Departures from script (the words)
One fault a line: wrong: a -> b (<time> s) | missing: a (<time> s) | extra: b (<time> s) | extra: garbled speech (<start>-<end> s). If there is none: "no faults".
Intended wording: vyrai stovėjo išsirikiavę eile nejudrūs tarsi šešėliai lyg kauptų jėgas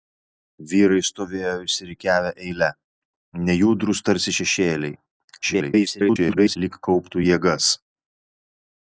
extra: garbled speech (5.4-6.6 s)